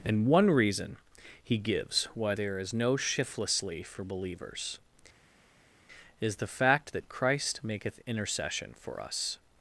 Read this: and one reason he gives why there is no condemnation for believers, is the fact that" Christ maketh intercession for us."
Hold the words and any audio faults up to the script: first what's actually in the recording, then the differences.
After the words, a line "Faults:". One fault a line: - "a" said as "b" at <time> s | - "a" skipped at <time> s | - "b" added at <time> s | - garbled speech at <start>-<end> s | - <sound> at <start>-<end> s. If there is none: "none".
and one reason he gives why there is no shiftlessly for believers, is the fact that" Christ maketh intercession for us."
Faults:
- "condemnation" said as "shiftlessly" at 2.9 s